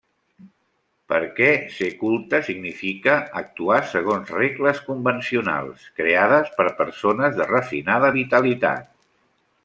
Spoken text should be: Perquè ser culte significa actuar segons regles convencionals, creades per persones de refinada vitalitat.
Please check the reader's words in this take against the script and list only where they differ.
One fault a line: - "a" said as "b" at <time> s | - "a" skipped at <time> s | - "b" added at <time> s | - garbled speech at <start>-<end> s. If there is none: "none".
none